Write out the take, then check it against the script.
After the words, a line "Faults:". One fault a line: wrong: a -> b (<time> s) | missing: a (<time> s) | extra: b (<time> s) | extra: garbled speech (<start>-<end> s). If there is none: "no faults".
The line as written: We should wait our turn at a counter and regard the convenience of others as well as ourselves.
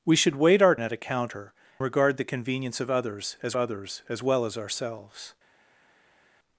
We should wait our at a counter regard the convenience of others as others as well as ourselves.
Faults:
missing: turn (0.8 s)
missing: and (1.5 s)
extra: others as (3.5 s)